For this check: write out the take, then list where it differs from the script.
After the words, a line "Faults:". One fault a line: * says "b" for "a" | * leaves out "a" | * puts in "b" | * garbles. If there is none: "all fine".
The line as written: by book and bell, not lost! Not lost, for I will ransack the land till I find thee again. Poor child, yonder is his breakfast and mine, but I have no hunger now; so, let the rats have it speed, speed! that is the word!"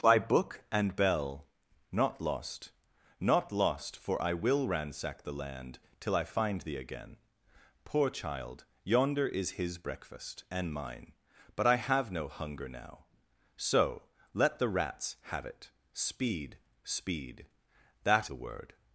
by book and bell, not lost! Not lost, for I will ransack the land till I find thee again. Poor child, yonder is his breakfast and mine, but I have no hunger now; so, let the rats have it speed, speed! that the word!"
Faults:
* leaves out "is"